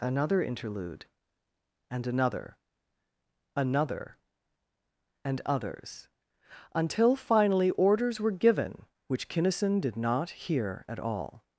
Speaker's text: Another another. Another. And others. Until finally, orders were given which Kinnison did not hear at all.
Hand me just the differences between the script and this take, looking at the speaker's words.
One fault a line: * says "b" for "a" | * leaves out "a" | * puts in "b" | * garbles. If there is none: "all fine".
* puts in "interlude and"